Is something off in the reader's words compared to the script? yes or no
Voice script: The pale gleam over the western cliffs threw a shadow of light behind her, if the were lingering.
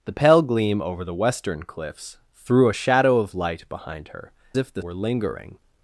no